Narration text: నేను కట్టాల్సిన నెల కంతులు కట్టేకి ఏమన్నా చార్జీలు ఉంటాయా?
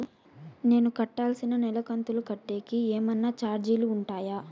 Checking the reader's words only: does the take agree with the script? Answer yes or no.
yes